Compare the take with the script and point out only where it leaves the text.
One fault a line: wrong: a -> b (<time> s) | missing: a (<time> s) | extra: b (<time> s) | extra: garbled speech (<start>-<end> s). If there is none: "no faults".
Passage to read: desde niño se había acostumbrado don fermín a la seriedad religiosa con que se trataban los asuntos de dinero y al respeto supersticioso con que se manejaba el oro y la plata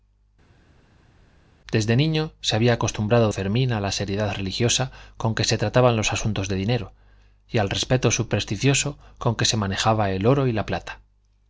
missing: don (3.3 s)